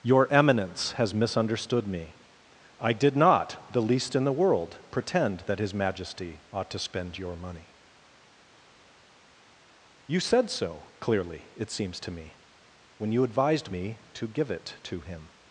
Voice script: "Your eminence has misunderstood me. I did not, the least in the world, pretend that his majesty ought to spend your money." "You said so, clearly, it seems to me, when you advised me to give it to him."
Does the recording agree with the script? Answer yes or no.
yes